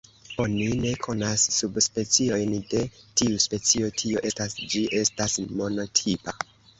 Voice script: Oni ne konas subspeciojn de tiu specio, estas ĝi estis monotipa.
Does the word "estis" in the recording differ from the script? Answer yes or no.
yes